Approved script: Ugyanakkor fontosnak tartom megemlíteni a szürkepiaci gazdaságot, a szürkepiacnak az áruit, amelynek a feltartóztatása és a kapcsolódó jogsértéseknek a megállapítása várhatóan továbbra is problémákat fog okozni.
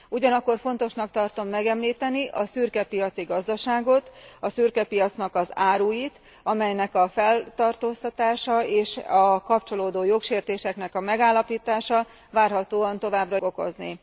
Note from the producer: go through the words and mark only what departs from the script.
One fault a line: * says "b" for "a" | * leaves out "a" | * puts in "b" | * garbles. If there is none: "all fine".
* leaves out "is problémákat fog"